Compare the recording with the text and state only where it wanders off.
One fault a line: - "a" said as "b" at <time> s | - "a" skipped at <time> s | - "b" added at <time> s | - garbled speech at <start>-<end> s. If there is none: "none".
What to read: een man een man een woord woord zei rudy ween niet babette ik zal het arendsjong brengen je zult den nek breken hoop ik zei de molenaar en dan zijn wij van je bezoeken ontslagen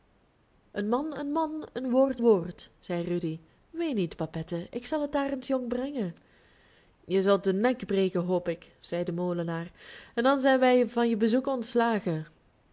none